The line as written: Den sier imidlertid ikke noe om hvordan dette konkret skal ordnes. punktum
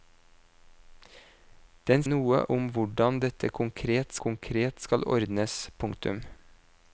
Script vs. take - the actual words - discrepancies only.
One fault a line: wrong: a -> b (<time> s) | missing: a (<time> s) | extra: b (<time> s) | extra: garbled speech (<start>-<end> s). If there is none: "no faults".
missing: sier imidlertid ikke (2.0 s)
extra: konkret (4.3 s)